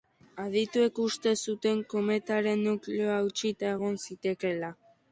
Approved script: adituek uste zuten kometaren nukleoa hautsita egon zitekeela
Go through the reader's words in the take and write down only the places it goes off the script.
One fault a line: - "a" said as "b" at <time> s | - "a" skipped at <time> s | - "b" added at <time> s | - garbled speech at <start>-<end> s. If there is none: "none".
none